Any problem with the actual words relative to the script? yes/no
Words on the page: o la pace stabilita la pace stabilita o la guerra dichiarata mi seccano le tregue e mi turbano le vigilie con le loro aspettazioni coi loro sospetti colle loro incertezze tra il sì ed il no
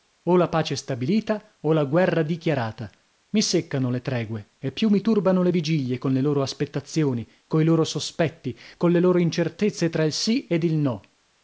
yes